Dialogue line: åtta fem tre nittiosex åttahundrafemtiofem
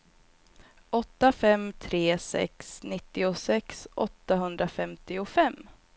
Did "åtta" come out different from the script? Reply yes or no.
no